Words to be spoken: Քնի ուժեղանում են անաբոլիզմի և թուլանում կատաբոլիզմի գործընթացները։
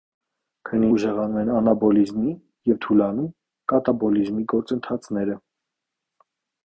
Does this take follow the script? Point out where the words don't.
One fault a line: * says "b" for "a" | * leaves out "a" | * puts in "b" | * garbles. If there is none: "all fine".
all fine